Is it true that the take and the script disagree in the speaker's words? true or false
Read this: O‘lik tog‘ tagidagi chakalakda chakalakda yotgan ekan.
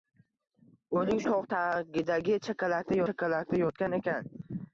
false